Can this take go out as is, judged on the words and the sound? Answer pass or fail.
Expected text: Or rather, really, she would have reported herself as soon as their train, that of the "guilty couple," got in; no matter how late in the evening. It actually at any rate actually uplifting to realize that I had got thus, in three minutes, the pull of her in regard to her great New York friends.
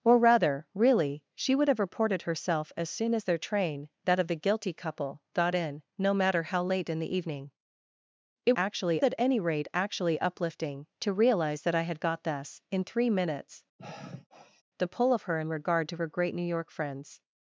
fail